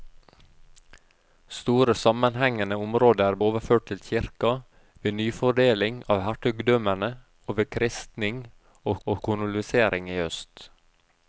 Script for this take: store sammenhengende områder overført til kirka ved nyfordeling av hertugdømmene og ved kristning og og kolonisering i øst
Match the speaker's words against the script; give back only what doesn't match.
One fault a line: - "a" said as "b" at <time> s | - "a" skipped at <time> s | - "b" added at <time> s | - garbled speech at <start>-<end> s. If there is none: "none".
none